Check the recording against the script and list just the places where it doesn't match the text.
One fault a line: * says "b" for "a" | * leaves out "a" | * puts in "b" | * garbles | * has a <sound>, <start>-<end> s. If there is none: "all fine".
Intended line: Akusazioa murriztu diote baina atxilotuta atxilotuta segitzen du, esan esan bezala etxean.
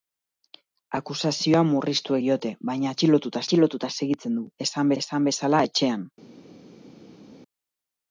all fine